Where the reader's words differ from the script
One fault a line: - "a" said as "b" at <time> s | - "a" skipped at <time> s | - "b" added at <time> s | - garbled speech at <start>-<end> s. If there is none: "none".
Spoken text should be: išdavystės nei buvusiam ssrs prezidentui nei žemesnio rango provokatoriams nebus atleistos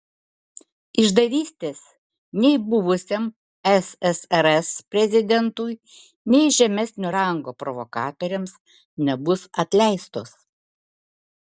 none